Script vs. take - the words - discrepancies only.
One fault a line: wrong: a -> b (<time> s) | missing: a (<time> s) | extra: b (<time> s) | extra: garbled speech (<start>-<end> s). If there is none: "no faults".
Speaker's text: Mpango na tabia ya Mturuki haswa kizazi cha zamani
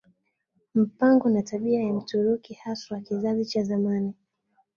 no faults